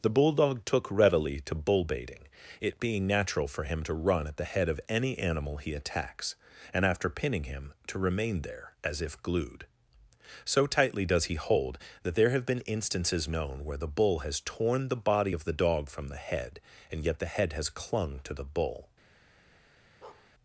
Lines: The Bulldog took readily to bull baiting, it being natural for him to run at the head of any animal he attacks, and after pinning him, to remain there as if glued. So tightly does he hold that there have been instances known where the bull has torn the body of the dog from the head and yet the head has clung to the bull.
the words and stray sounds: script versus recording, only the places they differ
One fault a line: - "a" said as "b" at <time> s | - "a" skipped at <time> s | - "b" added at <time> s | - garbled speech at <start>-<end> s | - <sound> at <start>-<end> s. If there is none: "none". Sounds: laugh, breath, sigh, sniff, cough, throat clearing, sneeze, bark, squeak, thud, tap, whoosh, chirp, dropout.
- bark at 20.0-20.3 s